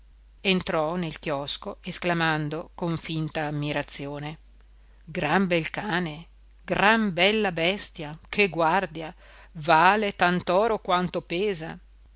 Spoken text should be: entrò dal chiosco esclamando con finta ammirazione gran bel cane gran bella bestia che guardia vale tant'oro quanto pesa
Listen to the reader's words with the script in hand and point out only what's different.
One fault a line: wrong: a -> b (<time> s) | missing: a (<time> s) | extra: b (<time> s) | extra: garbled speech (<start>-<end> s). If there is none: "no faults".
wrong: dal -> nel (0.9 s)